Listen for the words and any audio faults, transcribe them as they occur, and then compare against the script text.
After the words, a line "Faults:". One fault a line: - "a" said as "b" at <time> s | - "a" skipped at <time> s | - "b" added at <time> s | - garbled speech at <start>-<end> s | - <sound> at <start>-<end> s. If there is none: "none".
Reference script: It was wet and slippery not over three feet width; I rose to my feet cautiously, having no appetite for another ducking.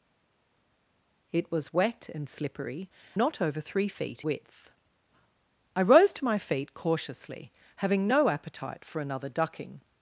It was wet and slippery not over three feet width; I rose to my feet cautiously, having no appetite for another ducking.
Faults:
none